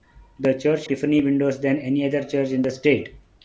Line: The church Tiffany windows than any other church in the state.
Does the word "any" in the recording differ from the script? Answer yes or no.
no